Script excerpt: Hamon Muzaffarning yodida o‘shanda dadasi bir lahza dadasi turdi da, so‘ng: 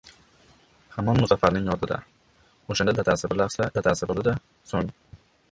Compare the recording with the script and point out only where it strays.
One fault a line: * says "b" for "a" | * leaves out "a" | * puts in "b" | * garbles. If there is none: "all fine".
all fine